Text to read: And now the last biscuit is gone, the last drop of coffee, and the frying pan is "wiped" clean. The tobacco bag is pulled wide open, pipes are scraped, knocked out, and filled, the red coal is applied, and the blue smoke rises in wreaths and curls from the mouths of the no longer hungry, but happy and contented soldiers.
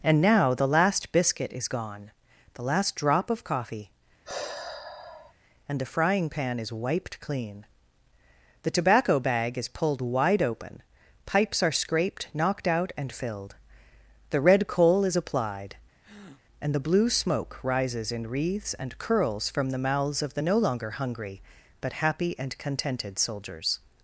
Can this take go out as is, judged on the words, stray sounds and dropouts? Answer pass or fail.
fail